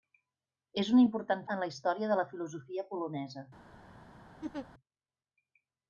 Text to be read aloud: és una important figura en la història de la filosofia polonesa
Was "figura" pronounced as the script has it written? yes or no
no